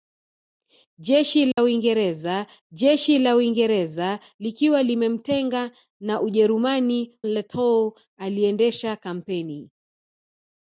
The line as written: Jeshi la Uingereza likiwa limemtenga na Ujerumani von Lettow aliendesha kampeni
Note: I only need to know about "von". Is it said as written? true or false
false